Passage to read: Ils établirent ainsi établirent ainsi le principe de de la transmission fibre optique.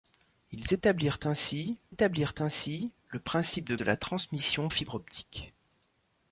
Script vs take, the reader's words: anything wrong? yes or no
no